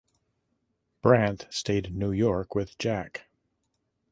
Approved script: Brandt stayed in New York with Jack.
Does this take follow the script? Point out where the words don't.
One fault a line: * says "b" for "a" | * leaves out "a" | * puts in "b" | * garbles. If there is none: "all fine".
all fine